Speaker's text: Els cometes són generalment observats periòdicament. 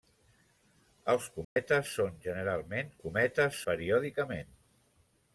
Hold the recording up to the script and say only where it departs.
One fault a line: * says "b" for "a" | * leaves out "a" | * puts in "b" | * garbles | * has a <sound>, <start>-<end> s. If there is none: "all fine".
* has a dropout, 1.4-1.6 s
* says "cometes" for "observats"